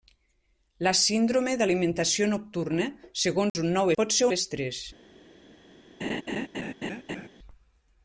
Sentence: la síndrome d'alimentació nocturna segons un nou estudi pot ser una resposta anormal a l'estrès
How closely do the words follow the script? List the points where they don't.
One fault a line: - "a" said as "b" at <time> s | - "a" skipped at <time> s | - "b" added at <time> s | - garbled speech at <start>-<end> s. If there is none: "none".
- "estudi" skipped at 3.9 s
- "una resposta anormal" skipped at 4.3 s